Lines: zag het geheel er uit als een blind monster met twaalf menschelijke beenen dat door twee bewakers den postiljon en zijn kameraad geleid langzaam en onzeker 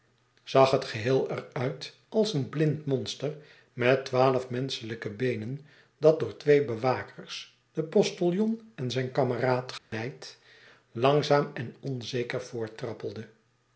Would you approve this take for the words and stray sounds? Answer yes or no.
no